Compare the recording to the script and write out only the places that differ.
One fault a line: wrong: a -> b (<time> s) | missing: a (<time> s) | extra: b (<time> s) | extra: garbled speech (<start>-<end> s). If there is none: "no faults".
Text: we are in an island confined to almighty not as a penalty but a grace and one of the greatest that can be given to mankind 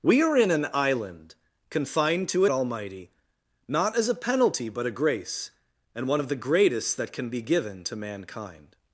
no faults